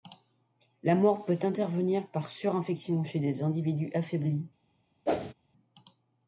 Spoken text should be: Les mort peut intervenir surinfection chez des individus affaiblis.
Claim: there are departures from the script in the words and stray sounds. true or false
true